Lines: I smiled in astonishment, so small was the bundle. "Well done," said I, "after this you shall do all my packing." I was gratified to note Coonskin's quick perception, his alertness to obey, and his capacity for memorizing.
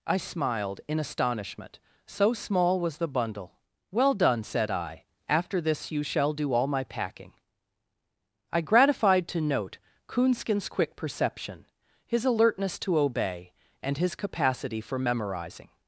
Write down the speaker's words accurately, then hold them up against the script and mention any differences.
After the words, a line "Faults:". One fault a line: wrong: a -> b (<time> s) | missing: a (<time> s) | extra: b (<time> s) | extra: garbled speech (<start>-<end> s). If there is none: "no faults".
I smiled in astonishment, so small was the bundle. "Well done," said I, "after this you shall do all my packing." I gratified to note Coonskin's quick perception, his alertness to obey, and his capacity for memorizing.
Faults:
missing: was (8.6 s)